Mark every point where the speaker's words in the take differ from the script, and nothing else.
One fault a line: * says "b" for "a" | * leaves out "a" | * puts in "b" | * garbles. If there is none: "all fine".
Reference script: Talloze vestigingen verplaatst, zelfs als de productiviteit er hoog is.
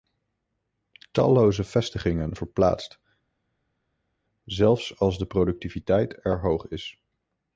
all fine